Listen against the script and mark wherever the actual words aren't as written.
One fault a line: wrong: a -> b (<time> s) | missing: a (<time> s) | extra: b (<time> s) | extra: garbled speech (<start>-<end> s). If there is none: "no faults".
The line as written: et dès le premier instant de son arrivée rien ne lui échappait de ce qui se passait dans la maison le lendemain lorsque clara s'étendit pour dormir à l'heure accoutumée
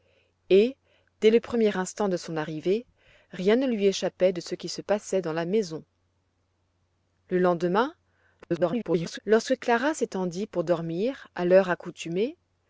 extra: garbled speech (8.4-9.2 s)